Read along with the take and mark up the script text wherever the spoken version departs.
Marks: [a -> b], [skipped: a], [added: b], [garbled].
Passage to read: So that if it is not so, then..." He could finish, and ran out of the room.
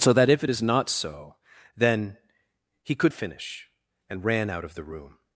So that if it is not so, then..." He could finish, and ran out of the room.